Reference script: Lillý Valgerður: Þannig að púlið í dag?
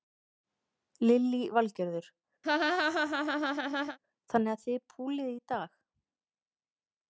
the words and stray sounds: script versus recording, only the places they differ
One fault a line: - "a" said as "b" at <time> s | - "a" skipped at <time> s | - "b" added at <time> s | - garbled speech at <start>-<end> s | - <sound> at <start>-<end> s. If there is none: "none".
- laugh at 2.4-4.0 s
- "þið" added at 4.7 s